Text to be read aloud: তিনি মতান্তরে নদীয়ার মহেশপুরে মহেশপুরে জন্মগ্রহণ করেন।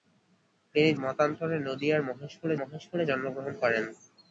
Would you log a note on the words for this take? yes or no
no